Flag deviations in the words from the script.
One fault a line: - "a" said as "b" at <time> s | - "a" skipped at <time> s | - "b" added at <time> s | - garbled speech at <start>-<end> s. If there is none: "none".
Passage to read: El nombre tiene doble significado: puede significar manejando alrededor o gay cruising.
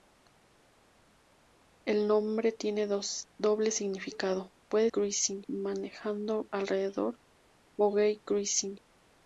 - "significar" said as "cruising" at 4.9 s